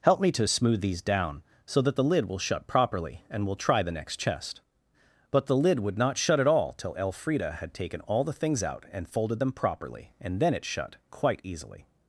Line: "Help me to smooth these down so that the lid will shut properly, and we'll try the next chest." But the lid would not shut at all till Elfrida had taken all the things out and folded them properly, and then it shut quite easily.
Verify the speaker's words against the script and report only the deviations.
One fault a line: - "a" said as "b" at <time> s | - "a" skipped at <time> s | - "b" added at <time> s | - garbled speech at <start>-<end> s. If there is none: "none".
none